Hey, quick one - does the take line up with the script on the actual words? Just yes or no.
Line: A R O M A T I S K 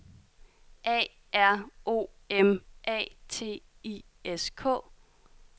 yes